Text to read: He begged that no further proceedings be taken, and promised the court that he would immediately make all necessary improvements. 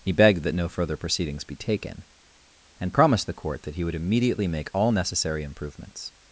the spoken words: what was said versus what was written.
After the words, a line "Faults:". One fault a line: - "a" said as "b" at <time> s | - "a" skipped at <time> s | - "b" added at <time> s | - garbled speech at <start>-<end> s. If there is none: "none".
He begged that no further proceedings be taken, and promised the court that he would immediately make all necessary improvements.
Faults:
none